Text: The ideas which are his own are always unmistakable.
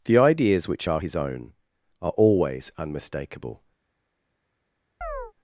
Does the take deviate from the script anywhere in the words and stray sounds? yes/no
yes